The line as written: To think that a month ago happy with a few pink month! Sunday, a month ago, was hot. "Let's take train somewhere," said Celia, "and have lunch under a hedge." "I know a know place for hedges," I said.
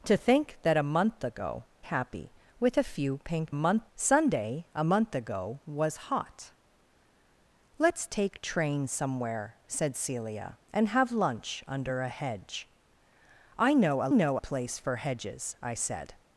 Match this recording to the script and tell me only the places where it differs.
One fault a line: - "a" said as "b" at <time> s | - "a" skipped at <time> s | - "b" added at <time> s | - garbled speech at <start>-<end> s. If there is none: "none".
none